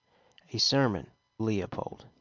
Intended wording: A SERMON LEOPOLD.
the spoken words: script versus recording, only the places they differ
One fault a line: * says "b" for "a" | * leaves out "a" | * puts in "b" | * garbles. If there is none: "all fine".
all fine